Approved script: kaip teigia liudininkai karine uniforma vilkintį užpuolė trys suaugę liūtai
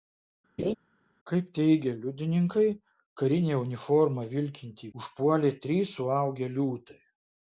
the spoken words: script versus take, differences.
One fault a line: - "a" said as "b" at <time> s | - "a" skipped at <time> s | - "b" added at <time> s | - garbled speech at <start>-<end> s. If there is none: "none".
none